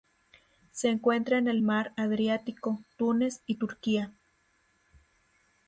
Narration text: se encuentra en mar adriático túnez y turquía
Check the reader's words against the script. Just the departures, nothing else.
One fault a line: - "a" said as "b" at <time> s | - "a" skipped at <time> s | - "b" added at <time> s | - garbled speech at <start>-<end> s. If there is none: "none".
- "el" added at 1.5 s